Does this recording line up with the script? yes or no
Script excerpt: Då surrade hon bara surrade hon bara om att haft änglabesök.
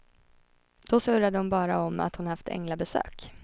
no